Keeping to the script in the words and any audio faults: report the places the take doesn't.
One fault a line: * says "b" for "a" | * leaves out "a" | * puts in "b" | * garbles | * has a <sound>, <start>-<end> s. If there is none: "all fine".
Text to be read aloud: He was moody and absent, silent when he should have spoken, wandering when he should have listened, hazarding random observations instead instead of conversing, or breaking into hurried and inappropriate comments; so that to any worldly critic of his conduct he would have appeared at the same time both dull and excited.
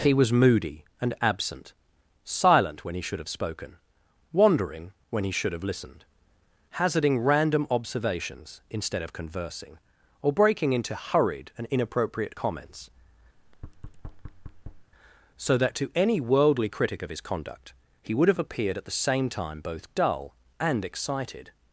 * leaves out "instead"
* has a thud, 13.4-14.9 s